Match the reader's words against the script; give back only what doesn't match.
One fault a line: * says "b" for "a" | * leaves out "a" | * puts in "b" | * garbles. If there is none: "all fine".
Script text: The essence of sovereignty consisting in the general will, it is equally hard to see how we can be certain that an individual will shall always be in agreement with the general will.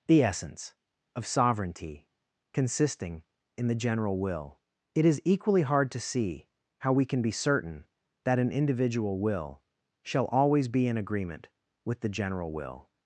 all fine